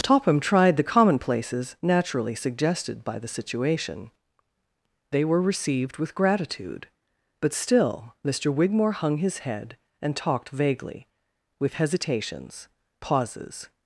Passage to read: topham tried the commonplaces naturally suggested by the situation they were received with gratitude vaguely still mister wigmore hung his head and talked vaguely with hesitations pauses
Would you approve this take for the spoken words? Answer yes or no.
no